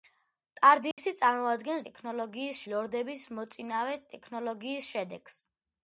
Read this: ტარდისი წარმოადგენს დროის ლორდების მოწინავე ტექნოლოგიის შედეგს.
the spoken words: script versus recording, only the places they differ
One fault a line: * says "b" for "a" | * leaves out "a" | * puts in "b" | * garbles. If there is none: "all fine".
* says "ტექნოლოგიის" for "დროის"